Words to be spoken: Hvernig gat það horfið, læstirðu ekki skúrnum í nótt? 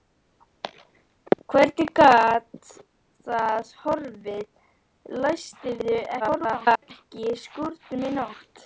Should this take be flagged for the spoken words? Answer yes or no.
yes